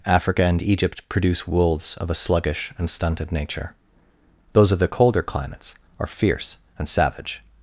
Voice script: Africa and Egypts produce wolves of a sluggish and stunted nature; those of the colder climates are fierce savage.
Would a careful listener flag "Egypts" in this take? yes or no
yes